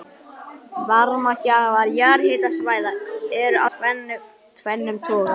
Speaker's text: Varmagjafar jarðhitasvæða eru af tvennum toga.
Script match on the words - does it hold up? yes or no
no